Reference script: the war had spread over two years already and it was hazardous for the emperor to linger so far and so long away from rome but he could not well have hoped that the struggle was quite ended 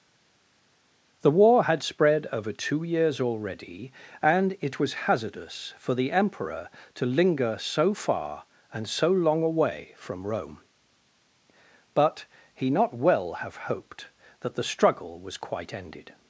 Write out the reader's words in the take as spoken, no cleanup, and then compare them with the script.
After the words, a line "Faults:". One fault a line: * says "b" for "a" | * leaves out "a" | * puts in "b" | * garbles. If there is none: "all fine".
the war had spread over two years already and it was hazardous for the emperor to linger so far and so long away from rome but he not well have hoped that the struggle was quite ended
Faults:
* leaves out "could"